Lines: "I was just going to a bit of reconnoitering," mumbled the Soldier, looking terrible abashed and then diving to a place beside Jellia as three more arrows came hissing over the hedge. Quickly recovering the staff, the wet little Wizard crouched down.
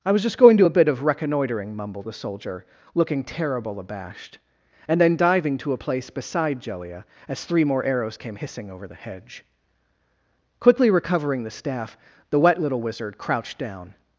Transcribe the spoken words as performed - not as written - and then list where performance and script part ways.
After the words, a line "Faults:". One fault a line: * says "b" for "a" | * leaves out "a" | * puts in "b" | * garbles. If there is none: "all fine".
"I was just going to a bit of reconnoitering," mumbled the Soldier, looking terrible abashed and then diving to a place beside Jellia as three more arrows came hissing over the hedge. Quickly recovering the staff, the wet little Wizard crouched down.
Faults:
all fine